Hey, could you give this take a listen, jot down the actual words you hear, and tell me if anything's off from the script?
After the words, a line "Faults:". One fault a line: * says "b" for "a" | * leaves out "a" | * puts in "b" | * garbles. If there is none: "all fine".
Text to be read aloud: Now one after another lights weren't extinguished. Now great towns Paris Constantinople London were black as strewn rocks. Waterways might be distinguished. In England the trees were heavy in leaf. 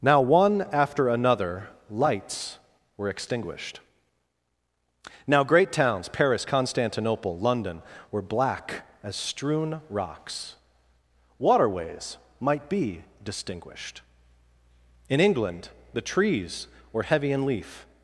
Now one after another lights were extinguished. Now great towns Paris Constantinople London were black as strewn rocks. Waterways might be distinguished. In England the trees were heavy in leaf.
Faults:
* says "were" for "weren't"